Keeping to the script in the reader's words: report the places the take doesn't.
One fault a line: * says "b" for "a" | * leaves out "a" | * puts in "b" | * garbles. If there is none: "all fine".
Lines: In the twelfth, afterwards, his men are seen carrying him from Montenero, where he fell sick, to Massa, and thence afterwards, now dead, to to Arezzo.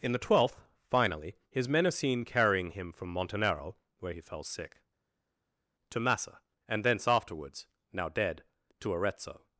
* says "finally" for "afterwards"
* leaves out "to"